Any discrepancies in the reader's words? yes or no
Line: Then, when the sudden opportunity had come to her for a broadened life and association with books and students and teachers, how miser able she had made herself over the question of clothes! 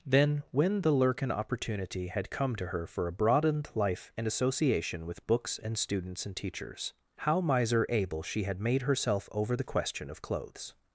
yes